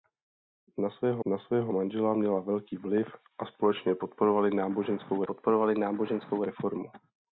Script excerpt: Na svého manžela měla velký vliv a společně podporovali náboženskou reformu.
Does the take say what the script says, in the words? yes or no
no